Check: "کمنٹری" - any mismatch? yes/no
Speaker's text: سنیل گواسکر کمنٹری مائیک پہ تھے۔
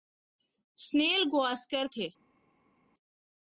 yes